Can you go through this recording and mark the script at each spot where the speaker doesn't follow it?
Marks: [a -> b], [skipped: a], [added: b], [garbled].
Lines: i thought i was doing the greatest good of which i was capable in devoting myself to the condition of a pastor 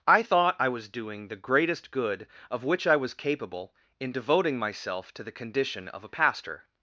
i thought i was doing the greatest good of which i was capable in devoting myself to the condition of a pastor